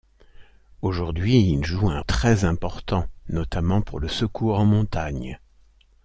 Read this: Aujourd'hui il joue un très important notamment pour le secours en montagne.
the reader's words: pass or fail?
pass